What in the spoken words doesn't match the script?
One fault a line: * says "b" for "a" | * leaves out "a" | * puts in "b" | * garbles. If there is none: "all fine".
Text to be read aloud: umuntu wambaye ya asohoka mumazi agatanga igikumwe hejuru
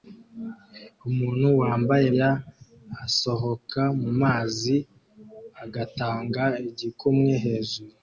all fine